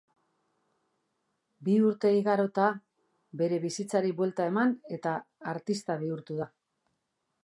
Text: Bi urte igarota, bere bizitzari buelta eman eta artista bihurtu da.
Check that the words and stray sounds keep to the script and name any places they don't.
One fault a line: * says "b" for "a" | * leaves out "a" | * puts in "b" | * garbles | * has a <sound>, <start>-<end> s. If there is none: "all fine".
all fine